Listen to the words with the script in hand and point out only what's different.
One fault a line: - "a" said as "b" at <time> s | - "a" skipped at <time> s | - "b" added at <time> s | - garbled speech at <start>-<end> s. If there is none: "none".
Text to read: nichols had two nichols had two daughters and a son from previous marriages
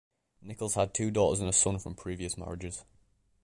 - "nichols had two" skipped at 1.1 s